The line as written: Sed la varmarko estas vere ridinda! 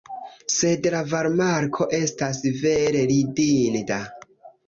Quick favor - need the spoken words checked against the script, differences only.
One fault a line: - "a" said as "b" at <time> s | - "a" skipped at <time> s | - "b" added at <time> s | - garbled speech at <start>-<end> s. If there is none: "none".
none